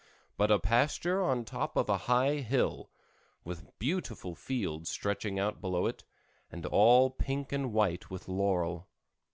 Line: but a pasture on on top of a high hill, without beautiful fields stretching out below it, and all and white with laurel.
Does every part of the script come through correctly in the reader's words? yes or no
no